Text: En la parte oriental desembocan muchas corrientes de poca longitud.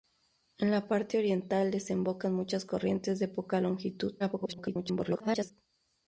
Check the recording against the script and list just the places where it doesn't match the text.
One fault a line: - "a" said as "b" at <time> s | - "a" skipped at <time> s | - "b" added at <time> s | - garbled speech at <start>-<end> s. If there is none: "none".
- garbled speech at 4.2-5.5 s